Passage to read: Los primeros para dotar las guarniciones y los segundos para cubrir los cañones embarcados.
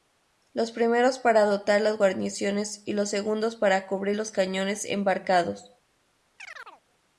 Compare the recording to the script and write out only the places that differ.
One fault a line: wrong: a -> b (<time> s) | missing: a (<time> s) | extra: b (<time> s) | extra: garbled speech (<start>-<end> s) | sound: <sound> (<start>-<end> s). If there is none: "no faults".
sound: chirp (6.4-6.8 s)